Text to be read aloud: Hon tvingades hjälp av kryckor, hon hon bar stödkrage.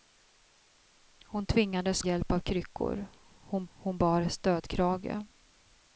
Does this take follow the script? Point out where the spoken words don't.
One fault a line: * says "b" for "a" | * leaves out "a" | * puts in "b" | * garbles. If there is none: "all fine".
all fine